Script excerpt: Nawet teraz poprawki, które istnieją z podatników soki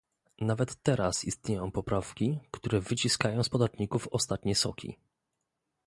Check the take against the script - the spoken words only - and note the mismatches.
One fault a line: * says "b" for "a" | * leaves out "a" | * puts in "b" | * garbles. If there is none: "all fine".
* puts in "istnieją"
* says "wyciskają" for "istnieją"
* puts in "ostatnie"